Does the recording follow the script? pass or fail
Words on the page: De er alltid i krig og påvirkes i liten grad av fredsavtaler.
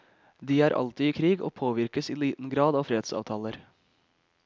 pass